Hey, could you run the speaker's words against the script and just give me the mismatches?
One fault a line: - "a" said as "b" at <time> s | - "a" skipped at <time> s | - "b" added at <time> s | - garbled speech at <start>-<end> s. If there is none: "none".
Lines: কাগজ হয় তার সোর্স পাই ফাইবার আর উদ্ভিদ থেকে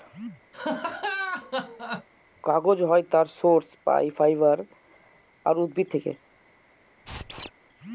none